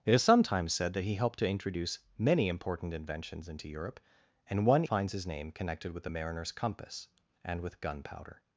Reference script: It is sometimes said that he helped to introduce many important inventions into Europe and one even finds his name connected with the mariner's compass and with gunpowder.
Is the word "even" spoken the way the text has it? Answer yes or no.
no